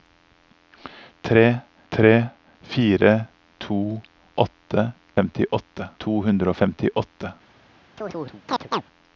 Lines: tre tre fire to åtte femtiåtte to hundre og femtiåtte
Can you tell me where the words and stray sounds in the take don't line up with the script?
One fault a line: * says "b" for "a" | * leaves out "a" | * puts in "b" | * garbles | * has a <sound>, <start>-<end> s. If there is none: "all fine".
* has a chirp, 8.0-8.8 s